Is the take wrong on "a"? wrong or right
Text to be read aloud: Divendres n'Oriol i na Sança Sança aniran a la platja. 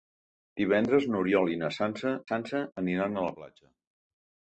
right